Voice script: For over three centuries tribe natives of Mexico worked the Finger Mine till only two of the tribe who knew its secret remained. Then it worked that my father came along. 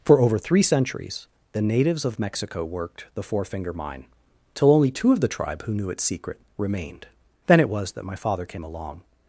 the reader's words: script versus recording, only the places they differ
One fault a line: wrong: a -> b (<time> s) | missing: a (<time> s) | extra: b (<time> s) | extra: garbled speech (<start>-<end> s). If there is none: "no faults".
wrong: tribe -> the (1.5 s)
extra: Four (3.2 s)
wrong: worked -> was (7.7 s)